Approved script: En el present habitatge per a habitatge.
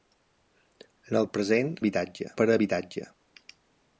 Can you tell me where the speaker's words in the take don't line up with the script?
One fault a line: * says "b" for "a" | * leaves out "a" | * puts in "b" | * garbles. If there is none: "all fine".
all fine